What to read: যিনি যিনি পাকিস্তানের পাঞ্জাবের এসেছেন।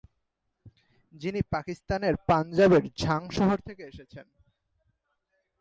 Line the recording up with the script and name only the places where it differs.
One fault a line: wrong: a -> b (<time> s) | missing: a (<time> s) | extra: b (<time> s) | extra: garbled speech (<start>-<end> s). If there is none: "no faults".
missing: যিনি (1.4 s)
extra: ঝাং শহর থেকে (3.0 s)